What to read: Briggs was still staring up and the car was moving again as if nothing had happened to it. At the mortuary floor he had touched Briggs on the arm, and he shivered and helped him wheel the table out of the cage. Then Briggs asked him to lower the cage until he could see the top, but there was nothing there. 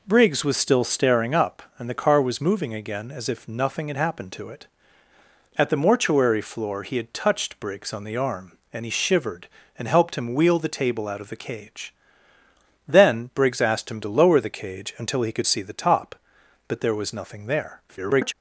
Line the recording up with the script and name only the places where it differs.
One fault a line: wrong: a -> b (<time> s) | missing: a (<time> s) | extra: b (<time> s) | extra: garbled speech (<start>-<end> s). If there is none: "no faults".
extra: garbled speech (17.9-18.3 s)